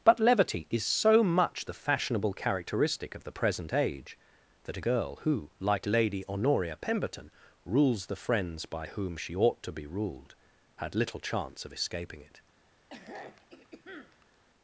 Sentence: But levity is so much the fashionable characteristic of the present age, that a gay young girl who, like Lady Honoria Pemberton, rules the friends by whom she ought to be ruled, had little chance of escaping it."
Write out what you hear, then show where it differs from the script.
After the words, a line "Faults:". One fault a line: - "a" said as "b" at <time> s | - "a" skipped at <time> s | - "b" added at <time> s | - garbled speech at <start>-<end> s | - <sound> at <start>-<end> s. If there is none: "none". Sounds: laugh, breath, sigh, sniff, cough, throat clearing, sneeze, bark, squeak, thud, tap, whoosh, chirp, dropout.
But levity is so much the fashionable characteristic of the present age, that a girl who, like Lady Honoria Pemberton, rules the friends by whom she ought to be ruled, had little chance of escaping it."
Faults:
- "gay young" skipped at 4.8 s
- throat clearing at 12.9-14.4 s